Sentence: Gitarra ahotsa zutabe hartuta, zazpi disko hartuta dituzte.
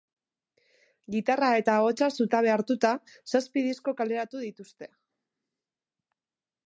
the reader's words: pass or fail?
fail